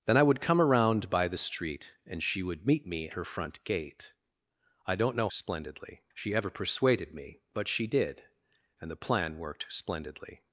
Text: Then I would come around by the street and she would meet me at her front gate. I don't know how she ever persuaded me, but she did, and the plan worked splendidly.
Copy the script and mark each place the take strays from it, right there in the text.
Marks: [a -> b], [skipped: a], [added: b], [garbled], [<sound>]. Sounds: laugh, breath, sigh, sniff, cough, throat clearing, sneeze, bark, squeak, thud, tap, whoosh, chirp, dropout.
Then I would come around by the street and she would meet me [skipped: at] her front gate. I don't know [how -> splendidly] she ever persuaded me, but she did, and the plan worked splendidly.